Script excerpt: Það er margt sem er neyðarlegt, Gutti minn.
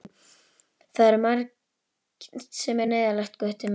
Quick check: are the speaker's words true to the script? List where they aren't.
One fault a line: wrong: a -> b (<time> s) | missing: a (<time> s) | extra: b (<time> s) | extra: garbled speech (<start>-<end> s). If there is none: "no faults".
no faults